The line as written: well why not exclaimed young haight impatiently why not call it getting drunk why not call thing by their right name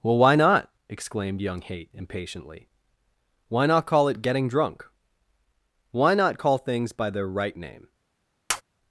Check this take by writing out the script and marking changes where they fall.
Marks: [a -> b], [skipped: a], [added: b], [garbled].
well why not exclaimed young haight impatiently why not call it getting drunk why not call [thing -> things] by their right name